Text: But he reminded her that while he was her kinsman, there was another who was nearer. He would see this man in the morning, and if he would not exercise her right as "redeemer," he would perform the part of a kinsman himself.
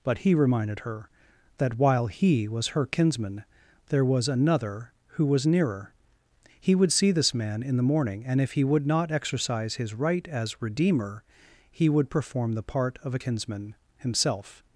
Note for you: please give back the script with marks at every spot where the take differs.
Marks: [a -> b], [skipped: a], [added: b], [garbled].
But he reminded her that while he was her kinsman, there was another who was nearer. He would see this man in the morning, and if he would not exercise [her -> his] right as "redeemer," he would perform the part of a kinsman himself.